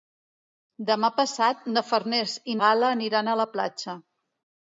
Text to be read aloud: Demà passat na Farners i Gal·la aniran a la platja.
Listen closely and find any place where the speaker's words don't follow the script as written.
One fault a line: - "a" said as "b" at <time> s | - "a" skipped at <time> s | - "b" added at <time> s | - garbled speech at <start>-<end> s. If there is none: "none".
none